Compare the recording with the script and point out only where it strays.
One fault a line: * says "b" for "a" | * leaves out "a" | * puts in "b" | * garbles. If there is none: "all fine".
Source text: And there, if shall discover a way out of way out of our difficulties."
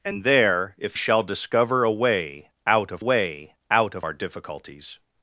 all fine